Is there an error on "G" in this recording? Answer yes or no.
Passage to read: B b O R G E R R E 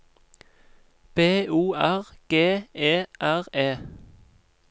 no